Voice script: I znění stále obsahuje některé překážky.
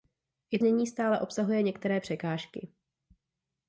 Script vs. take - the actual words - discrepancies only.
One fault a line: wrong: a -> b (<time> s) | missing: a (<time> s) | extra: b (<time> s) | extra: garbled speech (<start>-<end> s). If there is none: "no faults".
no faults